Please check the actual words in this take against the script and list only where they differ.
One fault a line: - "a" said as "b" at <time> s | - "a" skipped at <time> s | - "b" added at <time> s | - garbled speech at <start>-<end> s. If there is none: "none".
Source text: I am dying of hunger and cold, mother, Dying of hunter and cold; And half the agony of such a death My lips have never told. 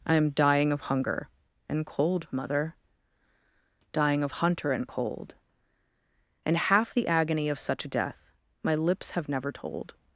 none